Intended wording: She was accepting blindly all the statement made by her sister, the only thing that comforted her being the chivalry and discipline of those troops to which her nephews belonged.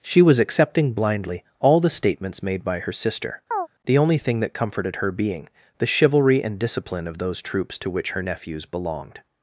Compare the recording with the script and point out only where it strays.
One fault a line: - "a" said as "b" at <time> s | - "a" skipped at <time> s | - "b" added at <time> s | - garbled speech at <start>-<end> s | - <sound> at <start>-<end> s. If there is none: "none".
- "statement" said as "statements" at 1.9 s
- chirp at 3.5-3.7 s